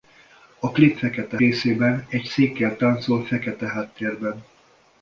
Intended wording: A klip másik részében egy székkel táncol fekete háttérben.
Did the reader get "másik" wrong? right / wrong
wrong